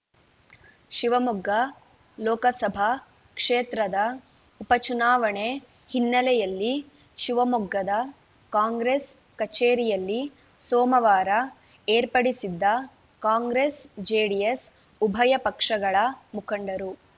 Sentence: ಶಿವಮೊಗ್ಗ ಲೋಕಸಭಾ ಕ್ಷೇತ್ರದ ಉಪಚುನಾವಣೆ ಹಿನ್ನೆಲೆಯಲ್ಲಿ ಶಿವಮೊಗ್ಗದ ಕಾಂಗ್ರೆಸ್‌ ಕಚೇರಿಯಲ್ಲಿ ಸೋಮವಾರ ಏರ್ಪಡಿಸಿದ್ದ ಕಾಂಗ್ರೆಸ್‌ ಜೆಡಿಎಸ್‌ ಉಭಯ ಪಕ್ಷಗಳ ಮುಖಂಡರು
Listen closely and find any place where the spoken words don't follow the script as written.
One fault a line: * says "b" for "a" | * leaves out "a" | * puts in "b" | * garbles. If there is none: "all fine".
all fine